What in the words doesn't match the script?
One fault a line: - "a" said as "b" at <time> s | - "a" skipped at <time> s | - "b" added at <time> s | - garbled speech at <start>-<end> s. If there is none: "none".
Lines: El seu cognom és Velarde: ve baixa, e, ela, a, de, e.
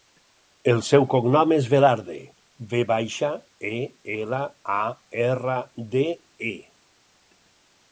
- "erra" added at 5.3 s